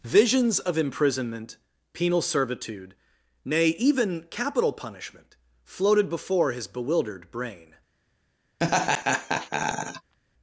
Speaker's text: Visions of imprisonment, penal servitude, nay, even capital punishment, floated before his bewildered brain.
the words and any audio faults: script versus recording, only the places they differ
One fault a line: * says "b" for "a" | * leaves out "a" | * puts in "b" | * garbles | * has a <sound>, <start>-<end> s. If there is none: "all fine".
* has a laugh, 8.6-10.1 s